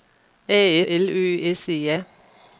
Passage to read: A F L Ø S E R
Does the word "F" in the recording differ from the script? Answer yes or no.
yes